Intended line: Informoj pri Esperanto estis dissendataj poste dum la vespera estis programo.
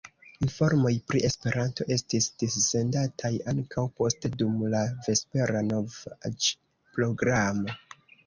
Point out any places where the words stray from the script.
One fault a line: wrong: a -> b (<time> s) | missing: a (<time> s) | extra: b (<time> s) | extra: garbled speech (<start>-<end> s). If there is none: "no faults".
extra: ankaŭ (3.5 s)
wrong: estis -> novaĵ (5.7 s)